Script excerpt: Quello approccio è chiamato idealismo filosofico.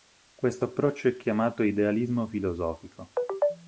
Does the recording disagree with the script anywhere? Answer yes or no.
yes